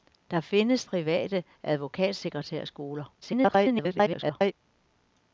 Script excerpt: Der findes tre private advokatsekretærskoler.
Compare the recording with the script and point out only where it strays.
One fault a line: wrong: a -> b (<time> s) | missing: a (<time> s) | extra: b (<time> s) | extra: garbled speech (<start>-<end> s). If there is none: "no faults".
missing: tre (0.8 s)
extra: garbled speech (3.2-4.5 s)